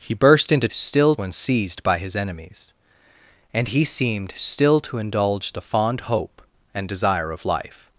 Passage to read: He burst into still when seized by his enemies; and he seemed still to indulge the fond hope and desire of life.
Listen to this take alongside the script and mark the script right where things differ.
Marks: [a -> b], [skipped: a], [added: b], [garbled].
He burst into still when seized by his enemies; and he seemed still to indulge the fond hope and desire of life.